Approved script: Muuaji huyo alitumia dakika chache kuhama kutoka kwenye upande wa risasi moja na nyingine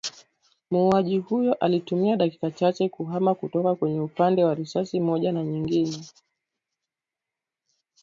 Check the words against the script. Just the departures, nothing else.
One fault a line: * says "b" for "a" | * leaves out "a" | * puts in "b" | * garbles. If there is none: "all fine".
all fine